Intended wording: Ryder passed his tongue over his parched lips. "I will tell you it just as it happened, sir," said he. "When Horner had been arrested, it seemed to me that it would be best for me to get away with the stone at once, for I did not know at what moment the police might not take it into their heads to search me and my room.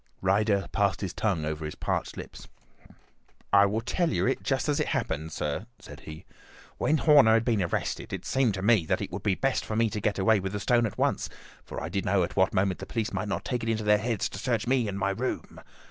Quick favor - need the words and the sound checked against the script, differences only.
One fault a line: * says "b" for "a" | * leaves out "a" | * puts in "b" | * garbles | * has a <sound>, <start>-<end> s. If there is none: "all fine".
* leaves out "not"